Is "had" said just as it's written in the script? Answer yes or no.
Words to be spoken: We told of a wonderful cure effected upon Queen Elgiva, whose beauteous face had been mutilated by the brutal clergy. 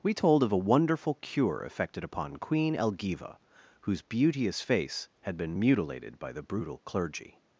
yes